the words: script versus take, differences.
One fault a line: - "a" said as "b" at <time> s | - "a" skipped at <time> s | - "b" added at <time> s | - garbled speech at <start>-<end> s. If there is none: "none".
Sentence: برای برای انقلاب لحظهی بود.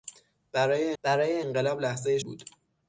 none